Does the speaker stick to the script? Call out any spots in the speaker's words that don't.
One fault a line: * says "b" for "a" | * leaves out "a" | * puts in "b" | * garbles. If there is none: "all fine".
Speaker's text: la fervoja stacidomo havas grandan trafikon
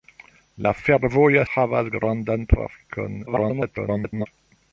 * leaves out "stacidomo"
* garbles